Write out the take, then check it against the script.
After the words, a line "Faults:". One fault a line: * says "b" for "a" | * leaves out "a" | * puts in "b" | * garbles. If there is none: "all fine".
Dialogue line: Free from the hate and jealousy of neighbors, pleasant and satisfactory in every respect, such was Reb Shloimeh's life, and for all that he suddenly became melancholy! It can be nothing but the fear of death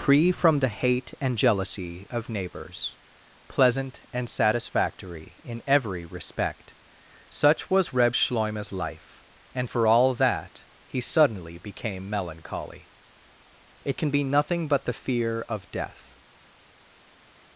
Free from the hate and jealousy of neighbors, pleasant and satisfactory in every respect, such was Reb Shloimeh's life, and for all that he suddenly became melancholy! It can be nothing but the fear of death
Faults:
all fine